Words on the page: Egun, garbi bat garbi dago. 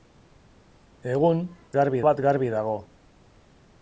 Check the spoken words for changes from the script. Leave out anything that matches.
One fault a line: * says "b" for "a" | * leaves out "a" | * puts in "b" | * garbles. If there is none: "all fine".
all fine